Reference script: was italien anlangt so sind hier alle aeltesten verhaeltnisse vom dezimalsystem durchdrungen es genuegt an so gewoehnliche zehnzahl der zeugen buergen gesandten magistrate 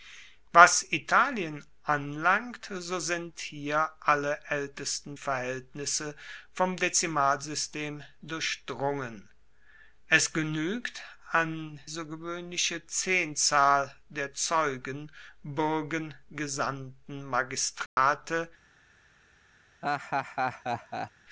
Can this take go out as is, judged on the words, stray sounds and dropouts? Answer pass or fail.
fail